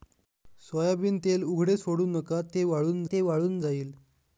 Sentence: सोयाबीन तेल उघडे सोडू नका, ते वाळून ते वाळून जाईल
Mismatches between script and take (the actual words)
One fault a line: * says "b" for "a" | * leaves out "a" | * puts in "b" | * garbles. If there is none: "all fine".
all fine